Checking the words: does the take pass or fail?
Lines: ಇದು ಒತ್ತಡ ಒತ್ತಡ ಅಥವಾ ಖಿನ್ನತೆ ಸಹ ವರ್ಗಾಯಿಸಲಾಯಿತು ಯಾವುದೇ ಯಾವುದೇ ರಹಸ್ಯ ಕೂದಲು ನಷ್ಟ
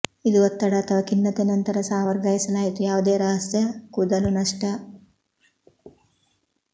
fail